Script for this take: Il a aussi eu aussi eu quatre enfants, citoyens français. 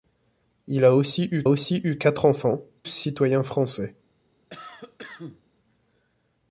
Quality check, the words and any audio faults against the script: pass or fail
fail